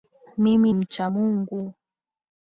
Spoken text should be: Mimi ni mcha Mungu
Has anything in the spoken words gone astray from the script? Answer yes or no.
yes